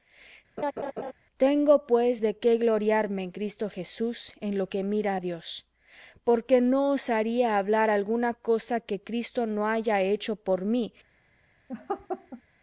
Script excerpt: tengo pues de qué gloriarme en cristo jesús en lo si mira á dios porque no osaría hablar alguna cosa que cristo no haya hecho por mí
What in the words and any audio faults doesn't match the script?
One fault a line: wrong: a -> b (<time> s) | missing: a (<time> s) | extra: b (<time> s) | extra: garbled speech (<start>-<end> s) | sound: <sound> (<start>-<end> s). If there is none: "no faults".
sound: laugh (0.6-1.1 s)
wrong: si -> que (4.7 s)
sound: laugh (11.7-12.4 s)